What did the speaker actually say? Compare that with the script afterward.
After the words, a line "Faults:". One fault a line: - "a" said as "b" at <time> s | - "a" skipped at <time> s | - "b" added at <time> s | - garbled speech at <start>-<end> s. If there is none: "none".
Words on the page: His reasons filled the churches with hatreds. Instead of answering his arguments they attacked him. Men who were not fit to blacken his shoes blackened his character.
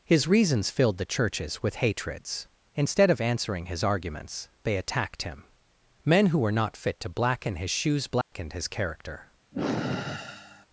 His reasons filled the churches with hatreds. Instead of answering his arguments they attacked him. Men who were not fit to blacken his shoes blackened his character.
Faults:
none